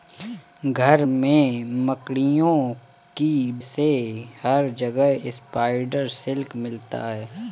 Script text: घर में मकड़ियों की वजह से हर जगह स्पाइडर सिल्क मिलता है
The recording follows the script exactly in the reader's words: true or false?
false